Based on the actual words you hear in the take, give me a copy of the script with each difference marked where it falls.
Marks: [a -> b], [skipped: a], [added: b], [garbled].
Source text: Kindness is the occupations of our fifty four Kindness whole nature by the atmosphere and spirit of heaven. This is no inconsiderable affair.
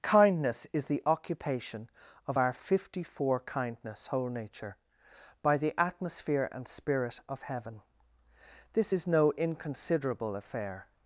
Kindness is the [occupations -> occupation] of our fifty four Kindness whole nature by the atmosphere and spirit of heaven. This is no inconsiderable affair.